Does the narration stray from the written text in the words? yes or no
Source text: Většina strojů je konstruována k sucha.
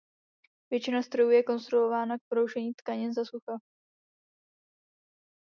yes